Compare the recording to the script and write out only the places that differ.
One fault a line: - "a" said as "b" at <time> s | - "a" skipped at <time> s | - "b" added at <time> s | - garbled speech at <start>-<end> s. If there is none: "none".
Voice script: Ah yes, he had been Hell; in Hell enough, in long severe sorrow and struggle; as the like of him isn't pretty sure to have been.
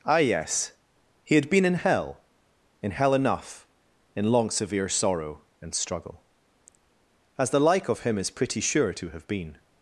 - "in" added at 1.6 s
- "isn't" said as "is" at 8.2 s